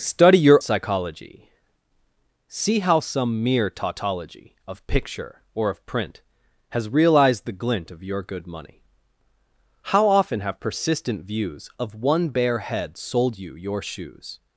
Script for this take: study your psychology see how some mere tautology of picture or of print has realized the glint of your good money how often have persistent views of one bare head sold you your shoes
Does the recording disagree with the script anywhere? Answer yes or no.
no